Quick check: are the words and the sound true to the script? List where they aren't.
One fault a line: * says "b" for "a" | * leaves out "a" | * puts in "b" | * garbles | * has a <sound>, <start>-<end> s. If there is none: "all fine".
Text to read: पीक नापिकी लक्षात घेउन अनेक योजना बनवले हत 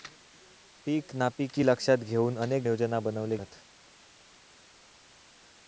all fine